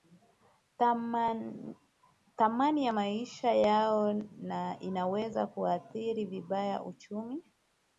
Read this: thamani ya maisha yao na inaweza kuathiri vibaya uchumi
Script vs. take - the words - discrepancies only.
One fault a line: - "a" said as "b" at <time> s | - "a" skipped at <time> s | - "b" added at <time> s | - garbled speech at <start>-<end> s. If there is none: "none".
none